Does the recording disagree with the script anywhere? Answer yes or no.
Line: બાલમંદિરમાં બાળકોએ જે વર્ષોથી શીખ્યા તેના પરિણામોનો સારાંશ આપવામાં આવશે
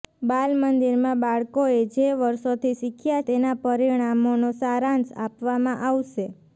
no